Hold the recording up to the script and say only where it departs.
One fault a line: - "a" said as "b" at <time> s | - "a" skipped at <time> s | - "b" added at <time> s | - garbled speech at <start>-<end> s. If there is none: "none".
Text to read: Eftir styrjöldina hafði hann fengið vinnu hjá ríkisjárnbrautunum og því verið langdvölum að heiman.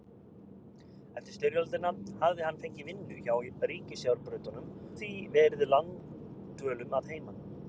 - "og" skipped at 4.7 s